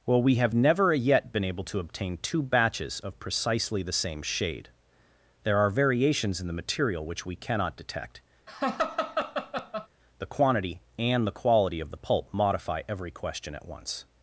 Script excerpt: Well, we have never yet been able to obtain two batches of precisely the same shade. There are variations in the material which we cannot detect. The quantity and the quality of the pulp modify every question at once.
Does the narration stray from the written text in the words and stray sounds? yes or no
yes